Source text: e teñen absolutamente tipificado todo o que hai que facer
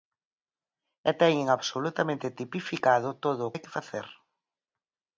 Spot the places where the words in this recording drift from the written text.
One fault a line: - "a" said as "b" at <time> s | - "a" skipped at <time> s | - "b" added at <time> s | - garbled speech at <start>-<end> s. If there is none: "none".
- "que" skipped at 3.5 s